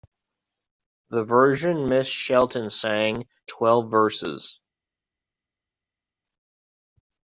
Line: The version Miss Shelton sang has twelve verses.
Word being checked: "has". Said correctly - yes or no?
no